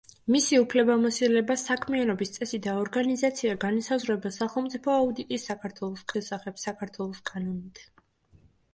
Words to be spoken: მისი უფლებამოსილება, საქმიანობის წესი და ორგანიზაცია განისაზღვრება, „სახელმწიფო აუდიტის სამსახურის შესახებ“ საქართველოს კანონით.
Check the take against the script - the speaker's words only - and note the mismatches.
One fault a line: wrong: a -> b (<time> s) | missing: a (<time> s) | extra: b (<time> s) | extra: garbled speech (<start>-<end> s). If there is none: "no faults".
wrong: სამსახურის -> საქართველოს (5.5 s)